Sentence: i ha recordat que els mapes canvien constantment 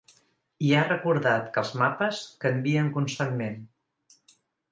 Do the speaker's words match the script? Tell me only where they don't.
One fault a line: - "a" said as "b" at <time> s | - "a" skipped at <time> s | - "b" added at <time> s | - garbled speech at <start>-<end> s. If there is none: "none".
none